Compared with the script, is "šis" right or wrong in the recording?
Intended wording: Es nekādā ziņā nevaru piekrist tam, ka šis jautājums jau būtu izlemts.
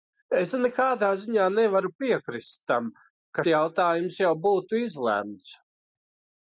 wrong